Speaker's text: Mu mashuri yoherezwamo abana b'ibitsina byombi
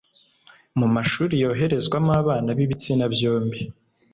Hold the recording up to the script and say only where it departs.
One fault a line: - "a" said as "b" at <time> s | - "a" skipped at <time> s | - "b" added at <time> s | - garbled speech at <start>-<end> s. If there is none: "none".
none